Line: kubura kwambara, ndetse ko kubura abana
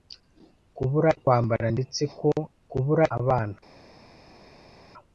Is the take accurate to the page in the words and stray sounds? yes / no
yes